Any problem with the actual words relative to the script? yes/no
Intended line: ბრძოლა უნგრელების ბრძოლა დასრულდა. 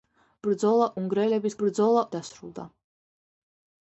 no